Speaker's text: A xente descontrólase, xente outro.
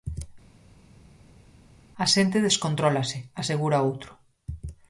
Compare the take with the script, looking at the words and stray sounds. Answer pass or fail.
fail